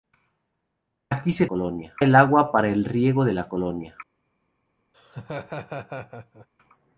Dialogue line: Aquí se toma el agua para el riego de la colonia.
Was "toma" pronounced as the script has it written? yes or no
no